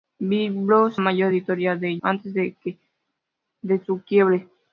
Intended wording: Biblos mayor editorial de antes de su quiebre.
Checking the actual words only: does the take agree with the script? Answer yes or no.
yes